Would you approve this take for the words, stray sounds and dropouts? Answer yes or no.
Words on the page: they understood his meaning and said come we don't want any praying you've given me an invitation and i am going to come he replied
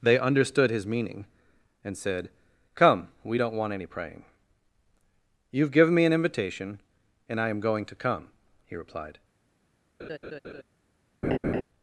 no